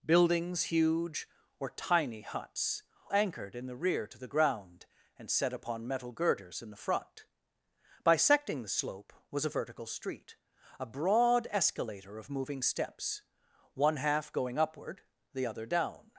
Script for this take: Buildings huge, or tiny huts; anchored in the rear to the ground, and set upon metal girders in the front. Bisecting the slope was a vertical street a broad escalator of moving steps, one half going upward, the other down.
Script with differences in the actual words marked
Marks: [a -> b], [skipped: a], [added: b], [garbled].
Buildings huge, or tiny huts; anchored in the rear to the ground, and set upon metal girders in the front. Bisecting the slope was a vertical street a broad escalator of moving steps, one half going upward, the other down.